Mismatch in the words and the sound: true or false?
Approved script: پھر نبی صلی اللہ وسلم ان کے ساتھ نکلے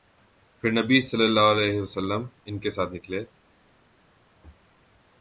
true